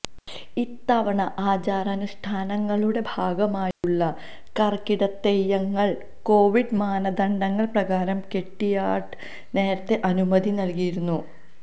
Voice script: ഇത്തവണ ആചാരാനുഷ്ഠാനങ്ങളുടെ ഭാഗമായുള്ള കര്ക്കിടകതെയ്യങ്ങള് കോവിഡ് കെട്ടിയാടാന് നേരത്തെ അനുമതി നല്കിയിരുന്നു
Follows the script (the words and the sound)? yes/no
no